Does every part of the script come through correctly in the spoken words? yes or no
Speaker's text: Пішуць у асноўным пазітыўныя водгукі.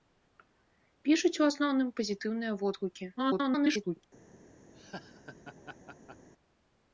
no